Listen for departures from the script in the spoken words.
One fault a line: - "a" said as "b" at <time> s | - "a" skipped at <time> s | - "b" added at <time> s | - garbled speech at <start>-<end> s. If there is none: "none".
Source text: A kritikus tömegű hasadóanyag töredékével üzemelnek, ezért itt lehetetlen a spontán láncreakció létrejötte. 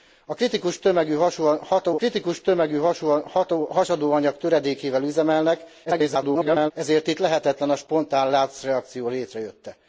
- "kritikus tömegű" added at 1.9 s
- garbled speech at 5.8-6.7 s